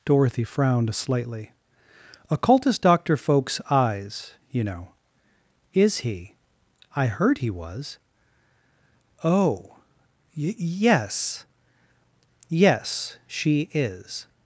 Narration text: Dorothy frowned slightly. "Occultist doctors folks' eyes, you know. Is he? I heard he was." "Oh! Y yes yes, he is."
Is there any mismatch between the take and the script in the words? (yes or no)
yes